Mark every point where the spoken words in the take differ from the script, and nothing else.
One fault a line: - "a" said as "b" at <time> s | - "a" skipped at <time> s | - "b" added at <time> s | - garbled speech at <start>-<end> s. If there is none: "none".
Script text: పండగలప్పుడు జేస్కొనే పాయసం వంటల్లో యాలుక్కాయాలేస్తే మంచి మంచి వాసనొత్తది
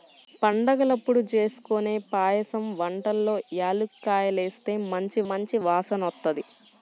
none